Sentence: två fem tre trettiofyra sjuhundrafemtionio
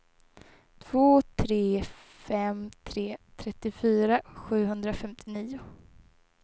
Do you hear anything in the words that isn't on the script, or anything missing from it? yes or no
yes